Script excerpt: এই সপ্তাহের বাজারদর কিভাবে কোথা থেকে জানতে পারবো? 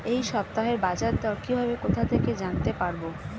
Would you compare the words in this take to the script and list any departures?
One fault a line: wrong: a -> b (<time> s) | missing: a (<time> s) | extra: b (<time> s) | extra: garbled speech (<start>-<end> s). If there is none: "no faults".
no faults